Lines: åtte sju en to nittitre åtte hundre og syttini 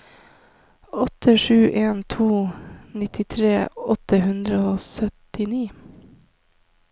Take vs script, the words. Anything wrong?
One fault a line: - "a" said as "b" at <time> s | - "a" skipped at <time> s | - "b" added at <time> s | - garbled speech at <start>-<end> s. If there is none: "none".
none